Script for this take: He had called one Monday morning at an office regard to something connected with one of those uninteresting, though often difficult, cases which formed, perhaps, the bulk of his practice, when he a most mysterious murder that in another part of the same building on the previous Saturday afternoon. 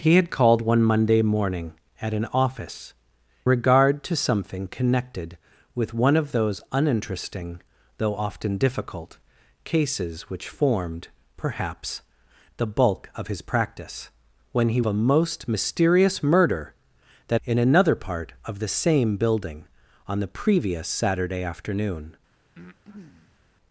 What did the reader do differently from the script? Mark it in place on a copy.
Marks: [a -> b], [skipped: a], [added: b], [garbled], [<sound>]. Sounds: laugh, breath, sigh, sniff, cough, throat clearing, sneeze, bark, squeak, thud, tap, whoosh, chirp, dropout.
He had called one Monday morning at an office regard to something connected with one of those uninteresting, though often difficult, cases which formed, perhaps, the bulk of his practice, when he a most mysterious murder that in another part of the same building on the previous Saturday afternoon. [breath]